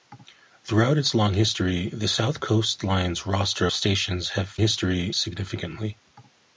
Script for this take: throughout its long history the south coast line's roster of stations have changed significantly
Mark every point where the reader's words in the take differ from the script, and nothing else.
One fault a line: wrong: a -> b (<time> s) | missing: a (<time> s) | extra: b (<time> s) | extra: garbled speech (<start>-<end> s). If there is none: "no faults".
missing: of (3.7 s)
wrong: changed -> history (4.6 s)